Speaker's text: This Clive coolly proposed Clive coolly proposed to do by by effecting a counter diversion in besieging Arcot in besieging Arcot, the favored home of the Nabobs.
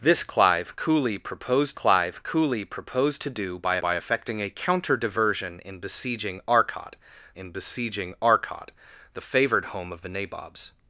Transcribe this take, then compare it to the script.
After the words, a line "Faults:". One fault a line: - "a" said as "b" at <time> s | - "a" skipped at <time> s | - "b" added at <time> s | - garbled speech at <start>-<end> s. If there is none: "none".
This Clive coolly proposed Clive coolly proposed to do by by effecting a counter diversion in besieging Arcot in besieging Arcot, the favored home of the Nabobs.
Faults:
none